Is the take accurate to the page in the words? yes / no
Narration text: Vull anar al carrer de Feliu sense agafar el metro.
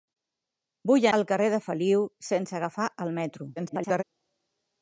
no